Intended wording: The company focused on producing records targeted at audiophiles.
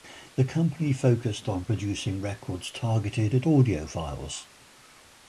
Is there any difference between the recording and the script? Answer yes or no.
no